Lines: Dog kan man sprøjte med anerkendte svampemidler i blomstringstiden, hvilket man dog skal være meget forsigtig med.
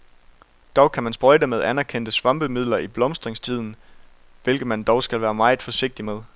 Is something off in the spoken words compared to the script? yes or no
no